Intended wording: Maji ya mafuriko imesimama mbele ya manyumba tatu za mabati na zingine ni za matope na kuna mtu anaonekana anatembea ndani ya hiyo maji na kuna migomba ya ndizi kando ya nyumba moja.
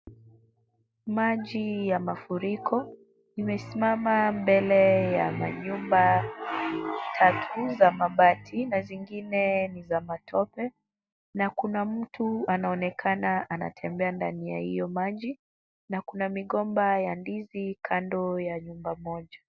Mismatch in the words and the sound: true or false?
false